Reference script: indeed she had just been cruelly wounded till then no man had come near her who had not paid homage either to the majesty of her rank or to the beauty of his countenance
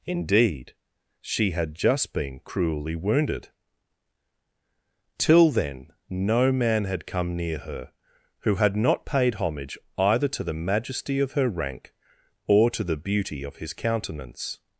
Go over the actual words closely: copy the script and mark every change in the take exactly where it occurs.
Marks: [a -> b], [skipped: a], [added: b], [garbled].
indeed she had just been cruelly wounded till then no man had come near her who had not paid homage either to the majesty of her rank or to the beauty of his countenance